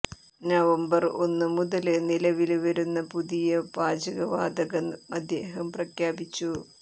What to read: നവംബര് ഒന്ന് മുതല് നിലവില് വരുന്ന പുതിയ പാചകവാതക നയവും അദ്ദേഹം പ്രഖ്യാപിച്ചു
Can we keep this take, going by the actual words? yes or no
no